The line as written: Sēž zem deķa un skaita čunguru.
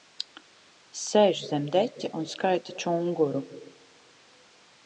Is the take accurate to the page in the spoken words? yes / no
yes